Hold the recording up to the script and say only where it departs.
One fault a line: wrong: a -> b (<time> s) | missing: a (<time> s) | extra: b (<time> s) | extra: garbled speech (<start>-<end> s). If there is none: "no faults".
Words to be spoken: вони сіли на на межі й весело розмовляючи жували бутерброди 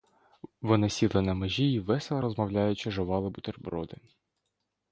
missing: на (1.3 s)